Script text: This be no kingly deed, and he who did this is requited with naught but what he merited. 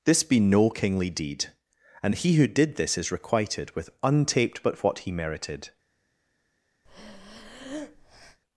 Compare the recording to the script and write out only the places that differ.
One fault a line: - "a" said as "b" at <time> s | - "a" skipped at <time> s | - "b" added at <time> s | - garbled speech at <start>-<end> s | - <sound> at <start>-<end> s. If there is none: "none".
- "naught" said as "untaped" at 4.0 s
- breath at 6.8-8.4 s